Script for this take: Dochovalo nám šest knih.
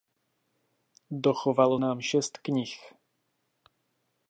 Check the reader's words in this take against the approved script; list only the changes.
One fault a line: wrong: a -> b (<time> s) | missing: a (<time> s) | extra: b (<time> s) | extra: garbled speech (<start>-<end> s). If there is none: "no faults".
no faults